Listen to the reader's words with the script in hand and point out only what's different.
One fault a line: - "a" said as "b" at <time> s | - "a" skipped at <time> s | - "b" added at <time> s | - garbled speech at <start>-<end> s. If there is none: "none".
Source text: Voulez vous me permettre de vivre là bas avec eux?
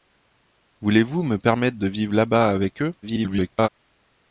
- garbled speech at 3.0-3.7 s